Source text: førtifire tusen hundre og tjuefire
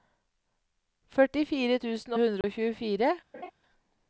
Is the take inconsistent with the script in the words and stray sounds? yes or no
yes